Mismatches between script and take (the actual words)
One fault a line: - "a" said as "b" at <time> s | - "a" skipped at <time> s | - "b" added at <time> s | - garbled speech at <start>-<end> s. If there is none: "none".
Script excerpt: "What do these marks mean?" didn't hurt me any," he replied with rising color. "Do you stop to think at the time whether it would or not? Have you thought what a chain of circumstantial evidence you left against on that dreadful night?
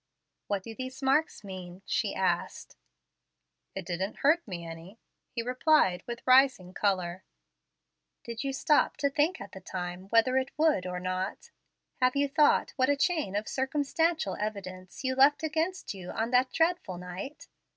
- "she asked It" added at 1.8 s
- "Do" said as "Did" at 8.2 s
- "you" added at 15.9 s